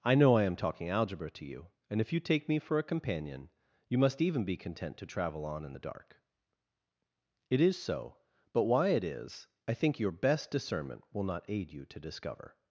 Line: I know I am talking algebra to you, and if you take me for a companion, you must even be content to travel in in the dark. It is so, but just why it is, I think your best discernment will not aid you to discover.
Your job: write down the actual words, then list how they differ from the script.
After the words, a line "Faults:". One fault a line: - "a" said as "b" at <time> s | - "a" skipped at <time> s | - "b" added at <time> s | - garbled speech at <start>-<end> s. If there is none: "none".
I know I am talking algebra to you, and if you take me for a companion, you must even be content to travel on in the dark. It is so, but why it is, I think your best discernment will not aid you to discover.
Faults:
- "in" said as "on" at 5.5 s
- "just" skipped at 8.6 s